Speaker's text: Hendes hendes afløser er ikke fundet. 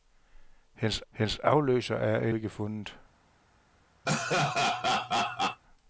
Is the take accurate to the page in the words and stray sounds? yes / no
no